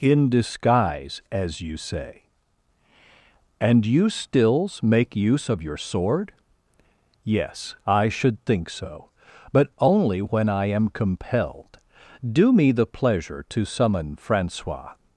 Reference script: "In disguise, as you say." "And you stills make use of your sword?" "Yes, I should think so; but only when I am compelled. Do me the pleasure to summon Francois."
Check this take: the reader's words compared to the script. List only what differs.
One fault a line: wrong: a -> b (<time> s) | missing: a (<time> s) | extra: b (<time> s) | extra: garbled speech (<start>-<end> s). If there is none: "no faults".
no faults